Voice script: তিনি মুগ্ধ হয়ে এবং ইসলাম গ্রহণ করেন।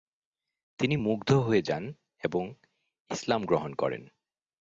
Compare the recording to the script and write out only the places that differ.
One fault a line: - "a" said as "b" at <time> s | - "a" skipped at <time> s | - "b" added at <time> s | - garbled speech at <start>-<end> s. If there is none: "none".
- "যান" added at 1.6 s